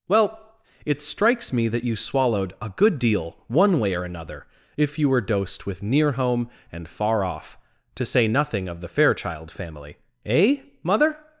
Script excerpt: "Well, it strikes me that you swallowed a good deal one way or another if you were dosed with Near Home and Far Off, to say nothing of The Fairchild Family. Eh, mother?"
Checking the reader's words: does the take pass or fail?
pass